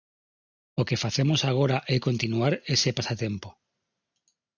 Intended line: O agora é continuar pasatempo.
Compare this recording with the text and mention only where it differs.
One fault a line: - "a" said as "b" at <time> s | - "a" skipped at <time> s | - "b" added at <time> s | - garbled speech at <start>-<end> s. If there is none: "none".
- "que facemos" added at 0.9 s
- "ese" added at 2.7 s